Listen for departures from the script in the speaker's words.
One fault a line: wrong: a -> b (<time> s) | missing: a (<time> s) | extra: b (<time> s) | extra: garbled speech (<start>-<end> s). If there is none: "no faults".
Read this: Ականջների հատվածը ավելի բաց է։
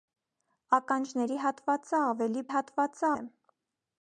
wrong: բաց -> հատվածը (2.5 s)